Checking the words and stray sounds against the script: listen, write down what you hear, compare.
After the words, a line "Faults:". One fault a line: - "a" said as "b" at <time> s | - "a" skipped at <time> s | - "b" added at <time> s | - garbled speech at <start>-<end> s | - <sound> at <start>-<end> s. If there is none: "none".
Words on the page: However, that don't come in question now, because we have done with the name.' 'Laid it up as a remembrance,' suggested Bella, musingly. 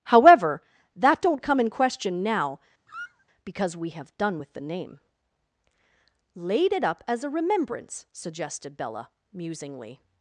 However, that don't come in question now, because we have done with the name.' 'Laid it up as a remembrance,' suggested Bella, musingly.
Faults:
- squeak at 2.9-3.3 s